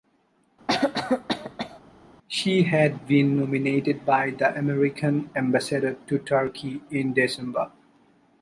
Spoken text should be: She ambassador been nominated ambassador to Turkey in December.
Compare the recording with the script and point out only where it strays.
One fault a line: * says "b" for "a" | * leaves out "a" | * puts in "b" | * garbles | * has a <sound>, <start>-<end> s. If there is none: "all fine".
* has a cough, 0.7-1.8 s
* says "had" for "ambassador"
* puts in "by the American"